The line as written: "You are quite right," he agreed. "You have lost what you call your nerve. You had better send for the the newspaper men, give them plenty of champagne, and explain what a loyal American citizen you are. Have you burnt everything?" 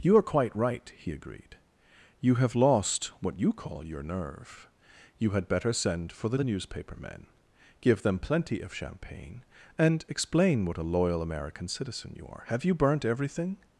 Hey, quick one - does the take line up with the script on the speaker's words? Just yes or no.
yes